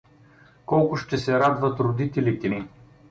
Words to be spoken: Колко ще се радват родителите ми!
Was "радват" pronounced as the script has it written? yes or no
yes